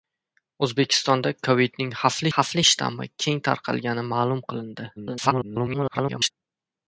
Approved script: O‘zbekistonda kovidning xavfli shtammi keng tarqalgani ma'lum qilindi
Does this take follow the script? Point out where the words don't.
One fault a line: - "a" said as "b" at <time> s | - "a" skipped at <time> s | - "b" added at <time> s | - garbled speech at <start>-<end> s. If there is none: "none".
- "xavfli" added at 2.3 s
- garbled speech at 5.0-6.3 s